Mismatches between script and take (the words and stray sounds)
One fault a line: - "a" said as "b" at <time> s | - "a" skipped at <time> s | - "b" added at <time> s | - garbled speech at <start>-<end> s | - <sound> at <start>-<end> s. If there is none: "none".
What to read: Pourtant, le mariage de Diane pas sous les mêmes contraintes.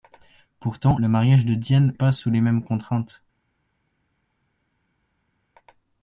none